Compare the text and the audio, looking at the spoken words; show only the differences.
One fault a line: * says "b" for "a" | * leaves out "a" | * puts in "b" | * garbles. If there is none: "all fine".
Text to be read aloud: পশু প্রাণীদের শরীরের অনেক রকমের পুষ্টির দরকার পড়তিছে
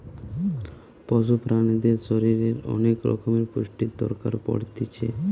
all fine